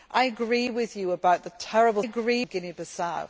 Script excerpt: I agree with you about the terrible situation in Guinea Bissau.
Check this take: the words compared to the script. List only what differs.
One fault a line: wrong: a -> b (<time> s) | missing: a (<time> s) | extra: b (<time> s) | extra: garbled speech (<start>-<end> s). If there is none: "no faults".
wrong: situation -> agree (2.0 s)